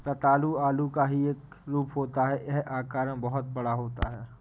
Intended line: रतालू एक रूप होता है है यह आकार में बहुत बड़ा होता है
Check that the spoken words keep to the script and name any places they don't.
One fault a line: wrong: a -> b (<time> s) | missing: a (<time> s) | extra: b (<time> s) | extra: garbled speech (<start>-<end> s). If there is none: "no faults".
extra: आलू का ही (0.7 s)
missing: है (2.5 s)